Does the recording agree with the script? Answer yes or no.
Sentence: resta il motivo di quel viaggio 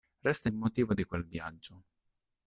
yes